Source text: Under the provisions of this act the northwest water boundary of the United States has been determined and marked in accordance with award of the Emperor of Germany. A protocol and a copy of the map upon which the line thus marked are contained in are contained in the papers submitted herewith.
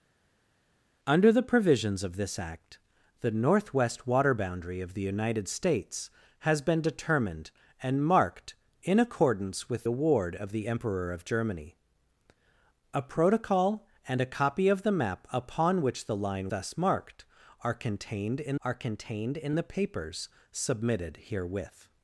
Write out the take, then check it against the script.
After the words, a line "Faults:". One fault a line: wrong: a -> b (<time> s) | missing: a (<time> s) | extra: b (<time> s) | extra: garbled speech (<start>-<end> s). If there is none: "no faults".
Under the provisions of this act the northwest water boundary of the United States has been determined and marked in accordance with award of the Emperor of Germany. A protocol and a copy of the map upon which the line thus marked are contained in are contained in the papers submitted herewith.
Faults:
no faults